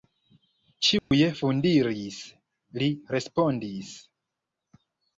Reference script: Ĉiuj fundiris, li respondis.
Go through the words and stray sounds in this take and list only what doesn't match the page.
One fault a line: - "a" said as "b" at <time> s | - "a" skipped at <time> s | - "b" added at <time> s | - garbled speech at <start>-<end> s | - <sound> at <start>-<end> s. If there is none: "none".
- dropout at 1.0-1.1 s